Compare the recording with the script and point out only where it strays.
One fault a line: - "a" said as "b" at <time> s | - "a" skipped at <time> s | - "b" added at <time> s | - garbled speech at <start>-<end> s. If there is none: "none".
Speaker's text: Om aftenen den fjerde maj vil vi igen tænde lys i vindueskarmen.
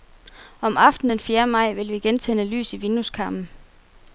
none